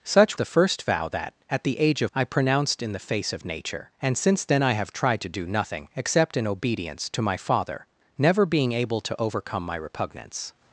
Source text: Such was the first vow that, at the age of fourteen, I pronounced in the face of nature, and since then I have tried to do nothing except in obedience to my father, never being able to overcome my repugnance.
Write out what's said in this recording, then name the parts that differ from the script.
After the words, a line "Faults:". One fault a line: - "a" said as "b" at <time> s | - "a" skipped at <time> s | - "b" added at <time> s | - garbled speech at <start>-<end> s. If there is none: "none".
Such the first vow that, at the age of I pronounced in the face of nature, and since then I have tried to do nothing except in obedience to my father, never being able to overcome my repugnance.
Faults:
- "was" skipped at 0.4 s
- "fourteen" skipped at 2.1 s